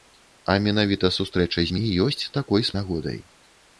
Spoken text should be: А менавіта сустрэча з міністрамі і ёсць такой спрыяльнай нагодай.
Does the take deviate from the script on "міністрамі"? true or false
true